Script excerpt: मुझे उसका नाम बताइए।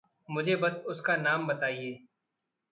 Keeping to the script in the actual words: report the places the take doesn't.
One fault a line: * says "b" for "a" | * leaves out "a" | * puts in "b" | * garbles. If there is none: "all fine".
* puts in "बस"